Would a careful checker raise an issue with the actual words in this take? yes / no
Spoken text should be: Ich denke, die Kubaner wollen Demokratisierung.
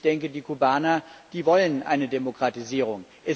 yes